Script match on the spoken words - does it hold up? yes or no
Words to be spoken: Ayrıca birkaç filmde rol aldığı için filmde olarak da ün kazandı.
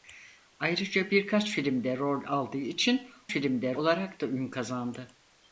yes